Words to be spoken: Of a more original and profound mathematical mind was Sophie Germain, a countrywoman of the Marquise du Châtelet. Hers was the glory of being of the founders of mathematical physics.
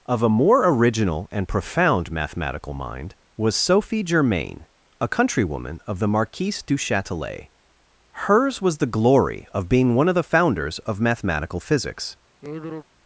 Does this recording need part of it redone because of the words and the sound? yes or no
yes